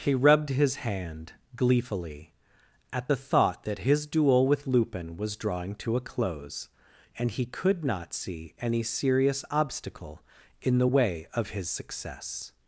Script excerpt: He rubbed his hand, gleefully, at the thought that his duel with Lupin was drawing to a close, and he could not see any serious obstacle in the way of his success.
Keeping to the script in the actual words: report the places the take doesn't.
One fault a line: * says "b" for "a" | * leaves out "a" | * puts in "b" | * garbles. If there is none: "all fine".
all fine